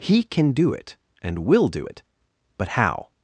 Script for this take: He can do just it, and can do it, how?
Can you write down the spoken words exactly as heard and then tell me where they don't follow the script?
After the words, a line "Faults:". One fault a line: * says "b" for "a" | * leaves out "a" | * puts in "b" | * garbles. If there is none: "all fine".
He can do it, and will do it, but how?
Faults:
* leaves out "just"
* says "will" for "can"
* puts in "but"